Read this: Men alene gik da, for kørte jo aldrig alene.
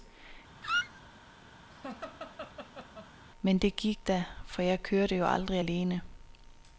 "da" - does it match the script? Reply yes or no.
yes